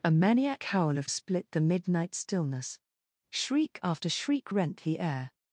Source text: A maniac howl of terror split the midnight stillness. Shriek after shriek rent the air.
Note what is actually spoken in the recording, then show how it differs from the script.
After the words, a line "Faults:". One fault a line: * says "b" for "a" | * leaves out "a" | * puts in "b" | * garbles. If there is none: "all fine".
A maniac howl of split the midnight stillness. Shriek after shriek rent the air.
Faults:
* leaves out "terror"